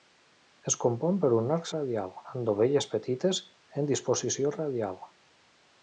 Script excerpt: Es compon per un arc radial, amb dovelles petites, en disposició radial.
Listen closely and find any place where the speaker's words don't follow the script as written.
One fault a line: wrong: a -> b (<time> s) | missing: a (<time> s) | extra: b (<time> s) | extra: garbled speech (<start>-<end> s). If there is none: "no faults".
no faults